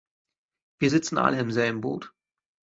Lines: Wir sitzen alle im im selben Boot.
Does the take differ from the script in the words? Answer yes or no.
yes